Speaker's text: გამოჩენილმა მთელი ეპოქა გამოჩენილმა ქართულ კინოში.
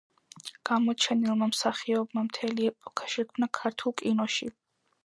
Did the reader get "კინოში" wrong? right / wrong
right